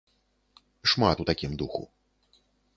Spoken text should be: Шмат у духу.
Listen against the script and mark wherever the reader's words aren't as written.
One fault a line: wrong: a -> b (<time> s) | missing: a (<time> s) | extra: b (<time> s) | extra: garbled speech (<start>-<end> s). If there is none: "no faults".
extra: такім (1.3 s)